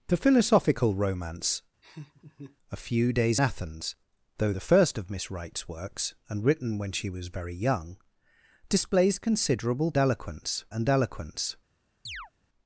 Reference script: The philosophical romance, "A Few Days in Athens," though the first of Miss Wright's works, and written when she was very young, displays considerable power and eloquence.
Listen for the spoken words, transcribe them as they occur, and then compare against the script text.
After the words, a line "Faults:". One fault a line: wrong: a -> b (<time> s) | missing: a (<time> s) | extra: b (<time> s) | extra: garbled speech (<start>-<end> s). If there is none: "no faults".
The philosophical romance, "A Few Days Athens," though the first of Miss Wright's works, and written when she was very young, displays considerable eloquence and eloquence.
Faults:
missing: in (3.4 s)
wrong: power -> eloquence (10.0 s)